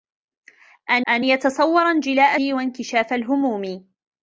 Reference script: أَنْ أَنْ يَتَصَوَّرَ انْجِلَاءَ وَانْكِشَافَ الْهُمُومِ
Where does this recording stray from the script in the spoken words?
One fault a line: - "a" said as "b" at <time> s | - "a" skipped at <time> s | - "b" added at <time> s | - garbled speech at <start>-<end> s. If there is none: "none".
none